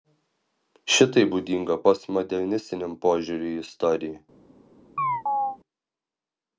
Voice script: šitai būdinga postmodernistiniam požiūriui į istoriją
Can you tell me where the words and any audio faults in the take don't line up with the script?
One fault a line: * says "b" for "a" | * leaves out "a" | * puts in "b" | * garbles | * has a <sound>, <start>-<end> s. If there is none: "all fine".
* has a chirp, 5.0-5.6 s